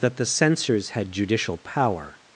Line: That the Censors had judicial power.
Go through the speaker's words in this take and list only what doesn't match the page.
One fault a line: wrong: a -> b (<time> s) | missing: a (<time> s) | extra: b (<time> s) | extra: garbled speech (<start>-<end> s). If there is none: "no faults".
no faults